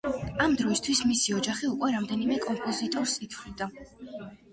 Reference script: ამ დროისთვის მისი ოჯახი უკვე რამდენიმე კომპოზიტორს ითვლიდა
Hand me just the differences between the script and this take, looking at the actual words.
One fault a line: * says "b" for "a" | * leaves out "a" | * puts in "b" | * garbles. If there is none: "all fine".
all fine